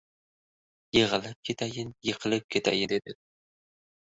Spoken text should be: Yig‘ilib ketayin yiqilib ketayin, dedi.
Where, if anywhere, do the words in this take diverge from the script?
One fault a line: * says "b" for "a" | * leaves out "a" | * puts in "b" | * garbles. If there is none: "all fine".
all fine